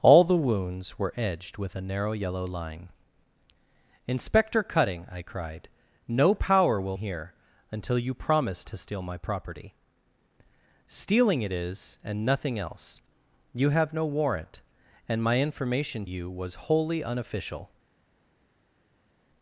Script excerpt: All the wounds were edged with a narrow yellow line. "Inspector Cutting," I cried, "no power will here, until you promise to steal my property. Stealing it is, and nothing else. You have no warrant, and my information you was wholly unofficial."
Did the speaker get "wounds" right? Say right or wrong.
right